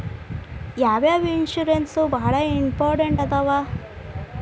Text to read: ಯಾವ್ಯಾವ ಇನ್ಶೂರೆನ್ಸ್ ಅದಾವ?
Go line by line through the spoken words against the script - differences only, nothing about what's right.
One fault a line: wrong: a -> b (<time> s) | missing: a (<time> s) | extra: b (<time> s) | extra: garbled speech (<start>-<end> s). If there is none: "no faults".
extra: ಬಾಳ ಇಂಪಾರ್ಟೆಂಟ್ (2.1 s)